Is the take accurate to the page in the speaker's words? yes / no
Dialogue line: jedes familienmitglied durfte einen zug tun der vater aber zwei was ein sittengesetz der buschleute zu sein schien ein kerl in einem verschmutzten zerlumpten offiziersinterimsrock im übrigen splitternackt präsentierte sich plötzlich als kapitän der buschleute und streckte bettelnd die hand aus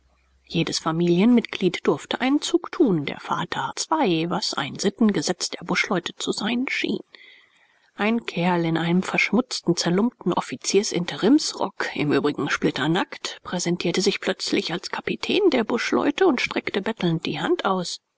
no